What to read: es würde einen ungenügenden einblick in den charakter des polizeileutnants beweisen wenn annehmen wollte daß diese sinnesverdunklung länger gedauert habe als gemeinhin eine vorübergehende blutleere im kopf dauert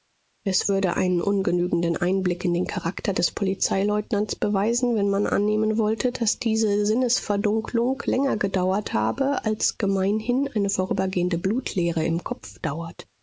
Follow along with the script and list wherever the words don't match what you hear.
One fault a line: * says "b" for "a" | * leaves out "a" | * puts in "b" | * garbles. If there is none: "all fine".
* puts in "man"